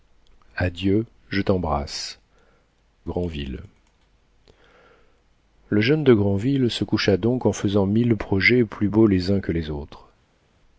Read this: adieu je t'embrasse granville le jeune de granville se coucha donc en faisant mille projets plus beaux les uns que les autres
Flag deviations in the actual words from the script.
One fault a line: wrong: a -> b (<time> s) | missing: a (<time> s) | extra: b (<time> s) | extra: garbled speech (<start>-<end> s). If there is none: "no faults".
no faults